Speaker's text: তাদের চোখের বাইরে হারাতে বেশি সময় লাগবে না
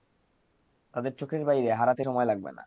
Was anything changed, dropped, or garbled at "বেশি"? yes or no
yes